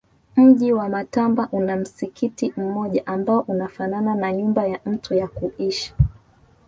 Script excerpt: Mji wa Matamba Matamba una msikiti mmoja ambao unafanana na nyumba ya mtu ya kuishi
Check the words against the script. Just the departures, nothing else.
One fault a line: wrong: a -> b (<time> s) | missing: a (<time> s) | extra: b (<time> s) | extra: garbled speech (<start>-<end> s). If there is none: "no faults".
missing: Matamba (1.5 s)